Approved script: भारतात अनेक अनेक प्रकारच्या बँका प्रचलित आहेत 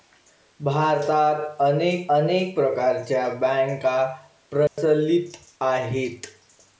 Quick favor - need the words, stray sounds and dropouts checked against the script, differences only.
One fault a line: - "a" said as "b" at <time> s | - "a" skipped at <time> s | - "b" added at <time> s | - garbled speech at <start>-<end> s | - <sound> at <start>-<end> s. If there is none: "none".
- dropout at 4.7-4.8 s